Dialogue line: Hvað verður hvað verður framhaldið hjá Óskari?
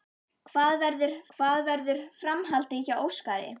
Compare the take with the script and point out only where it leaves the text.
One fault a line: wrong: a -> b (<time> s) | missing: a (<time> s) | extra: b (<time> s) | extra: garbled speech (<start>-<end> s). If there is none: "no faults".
no faults